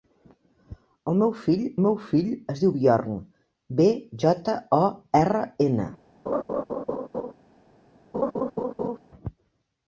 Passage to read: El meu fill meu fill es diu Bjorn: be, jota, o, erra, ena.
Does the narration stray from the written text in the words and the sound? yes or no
yes